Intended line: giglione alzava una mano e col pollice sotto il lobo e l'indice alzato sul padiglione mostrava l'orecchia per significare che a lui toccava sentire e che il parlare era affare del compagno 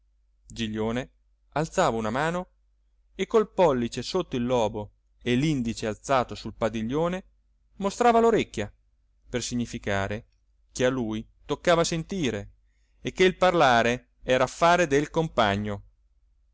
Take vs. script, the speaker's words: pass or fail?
pass